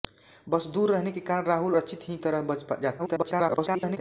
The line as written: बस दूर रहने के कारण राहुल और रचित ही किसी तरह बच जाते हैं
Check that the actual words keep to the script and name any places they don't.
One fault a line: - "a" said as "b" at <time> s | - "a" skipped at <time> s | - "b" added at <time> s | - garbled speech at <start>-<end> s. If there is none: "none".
- "और" skipped at 1.8 s
- "किसी" skipped at 2.2 s
- garbled speech at 3.0-4.0 s